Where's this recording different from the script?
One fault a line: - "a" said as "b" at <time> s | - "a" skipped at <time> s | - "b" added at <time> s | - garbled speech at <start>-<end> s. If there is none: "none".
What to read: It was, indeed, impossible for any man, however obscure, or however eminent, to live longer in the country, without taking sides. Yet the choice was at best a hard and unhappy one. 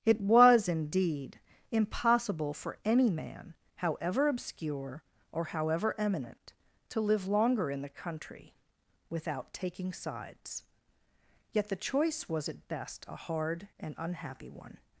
none